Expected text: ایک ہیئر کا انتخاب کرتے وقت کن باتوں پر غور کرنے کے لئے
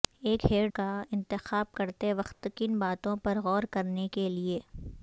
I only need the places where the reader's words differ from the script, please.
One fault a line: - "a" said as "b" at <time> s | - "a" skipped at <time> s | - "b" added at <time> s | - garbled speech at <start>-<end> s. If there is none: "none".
none